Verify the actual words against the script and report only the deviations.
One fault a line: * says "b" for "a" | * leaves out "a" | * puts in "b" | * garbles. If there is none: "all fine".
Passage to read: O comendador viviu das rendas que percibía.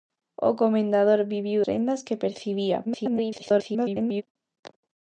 * leaves out "das"
* garbles